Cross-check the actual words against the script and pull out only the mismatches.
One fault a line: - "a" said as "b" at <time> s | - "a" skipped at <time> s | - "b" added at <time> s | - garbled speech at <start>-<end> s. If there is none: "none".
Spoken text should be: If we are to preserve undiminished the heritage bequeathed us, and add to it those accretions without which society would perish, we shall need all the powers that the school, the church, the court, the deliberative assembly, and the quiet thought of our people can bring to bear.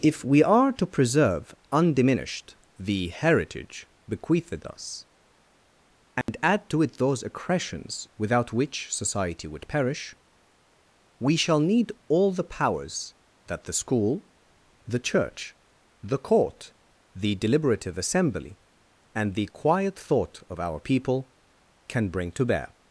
none